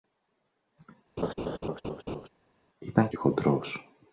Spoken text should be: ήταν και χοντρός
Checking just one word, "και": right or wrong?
right